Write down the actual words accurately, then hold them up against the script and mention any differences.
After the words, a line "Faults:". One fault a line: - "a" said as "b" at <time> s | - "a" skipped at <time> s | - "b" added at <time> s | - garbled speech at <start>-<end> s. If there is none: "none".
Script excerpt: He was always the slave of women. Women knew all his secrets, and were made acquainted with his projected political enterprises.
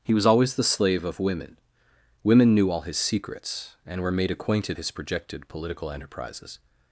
He was always the slave of women. Women knew all his secrets, and were made acquainted his projected political enterprises.
Faults:
- "with" skipped at 4.8 s